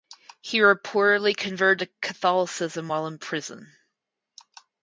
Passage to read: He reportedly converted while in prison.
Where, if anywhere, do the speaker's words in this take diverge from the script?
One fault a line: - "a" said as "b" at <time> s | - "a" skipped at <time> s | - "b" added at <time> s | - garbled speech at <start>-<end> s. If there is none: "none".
- "to Catholicism" added at 1.9 s